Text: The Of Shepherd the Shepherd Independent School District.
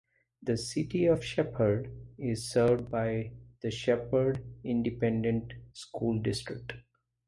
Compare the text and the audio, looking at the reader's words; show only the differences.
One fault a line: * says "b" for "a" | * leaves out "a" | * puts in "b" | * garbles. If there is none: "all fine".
* puts in "City"
* puts in "is served by"